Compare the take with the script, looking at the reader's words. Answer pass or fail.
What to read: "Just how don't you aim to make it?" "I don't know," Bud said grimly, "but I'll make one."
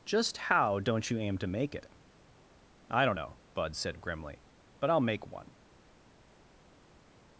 pass